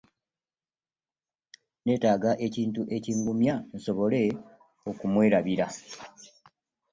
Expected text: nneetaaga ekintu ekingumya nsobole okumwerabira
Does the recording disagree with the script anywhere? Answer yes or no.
no